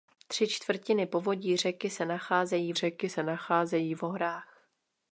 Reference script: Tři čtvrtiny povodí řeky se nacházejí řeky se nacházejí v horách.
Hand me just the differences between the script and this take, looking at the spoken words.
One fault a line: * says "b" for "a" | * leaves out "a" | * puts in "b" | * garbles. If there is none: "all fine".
all fine